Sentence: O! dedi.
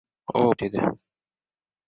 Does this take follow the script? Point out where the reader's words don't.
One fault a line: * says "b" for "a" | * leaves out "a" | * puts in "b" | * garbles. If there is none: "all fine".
all fine